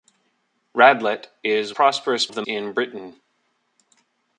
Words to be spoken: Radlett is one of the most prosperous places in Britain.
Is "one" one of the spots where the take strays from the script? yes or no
yes